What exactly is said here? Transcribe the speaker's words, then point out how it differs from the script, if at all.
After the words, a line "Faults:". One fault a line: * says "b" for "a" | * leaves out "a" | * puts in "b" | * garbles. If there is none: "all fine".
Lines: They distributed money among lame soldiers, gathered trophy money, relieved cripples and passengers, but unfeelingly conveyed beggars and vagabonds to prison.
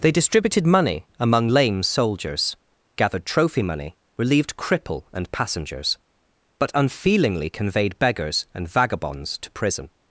They distributed money among lame soldiers, gathered trophy money, relieved cripple and passengers, but unfeelingly conveyed beggars and vagabonds to prison.
Faults:
* says "cripple" for "cripples"